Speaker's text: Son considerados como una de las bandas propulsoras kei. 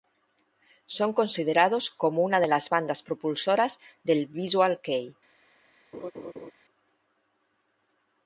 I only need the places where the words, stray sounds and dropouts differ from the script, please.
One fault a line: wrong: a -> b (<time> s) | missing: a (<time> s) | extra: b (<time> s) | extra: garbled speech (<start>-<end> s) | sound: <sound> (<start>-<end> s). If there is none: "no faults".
extra: del Visual (4.0 s)
sound: laugh (5.9-6.5 s)